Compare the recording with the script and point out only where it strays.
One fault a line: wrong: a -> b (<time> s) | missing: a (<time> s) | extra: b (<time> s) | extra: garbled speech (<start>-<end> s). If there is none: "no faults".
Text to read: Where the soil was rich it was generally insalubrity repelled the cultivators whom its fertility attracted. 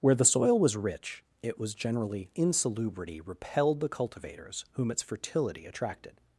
no faults